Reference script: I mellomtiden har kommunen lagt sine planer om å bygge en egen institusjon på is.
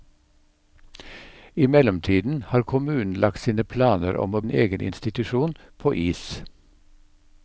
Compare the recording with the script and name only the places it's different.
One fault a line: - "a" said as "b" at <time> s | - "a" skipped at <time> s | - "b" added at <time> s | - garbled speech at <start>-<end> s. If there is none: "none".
- "bygge" skipped at 4.4 s